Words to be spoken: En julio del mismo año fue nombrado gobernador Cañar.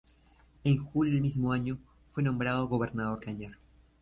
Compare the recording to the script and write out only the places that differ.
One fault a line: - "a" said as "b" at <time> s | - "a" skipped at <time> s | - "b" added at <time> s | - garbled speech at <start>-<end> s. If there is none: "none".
none